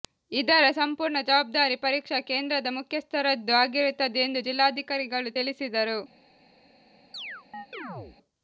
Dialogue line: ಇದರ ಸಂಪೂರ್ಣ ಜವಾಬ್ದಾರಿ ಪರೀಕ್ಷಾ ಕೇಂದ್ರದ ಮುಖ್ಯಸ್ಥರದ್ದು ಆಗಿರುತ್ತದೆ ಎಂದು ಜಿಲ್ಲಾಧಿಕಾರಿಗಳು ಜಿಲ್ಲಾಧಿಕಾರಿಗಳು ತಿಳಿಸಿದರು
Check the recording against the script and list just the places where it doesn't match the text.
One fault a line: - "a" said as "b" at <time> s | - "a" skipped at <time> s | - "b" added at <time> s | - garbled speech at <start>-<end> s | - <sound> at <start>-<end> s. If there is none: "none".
- "ಜಿಲ್ಲಾಧಿಕಾರಿಗಳು" skipped at 5.3 s
- chirp at 7.1-8.2 s